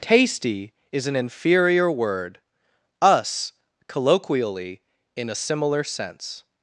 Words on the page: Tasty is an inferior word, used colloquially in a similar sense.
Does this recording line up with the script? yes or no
no